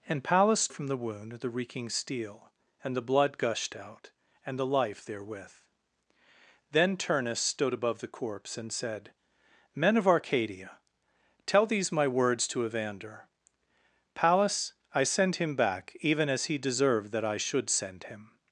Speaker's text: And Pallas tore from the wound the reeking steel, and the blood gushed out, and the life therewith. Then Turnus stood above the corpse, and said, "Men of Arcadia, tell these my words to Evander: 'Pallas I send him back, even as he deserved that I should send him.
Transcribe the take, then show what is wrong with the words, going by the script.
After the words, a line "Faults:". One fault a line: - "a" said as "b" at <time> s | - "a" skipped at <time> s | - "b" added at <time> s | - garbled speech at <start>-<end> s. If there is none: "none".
And Pallas from the wound the reeking steel, and the blood gushed out, and the life therewith. Then Turnus stood above the corpse, and said, "Men of Arcadia, tell these my words to Evander: 'Pallas I send him back, even as he deserved that I should send him.
Faults:
- "tore" skipped at 0.7 s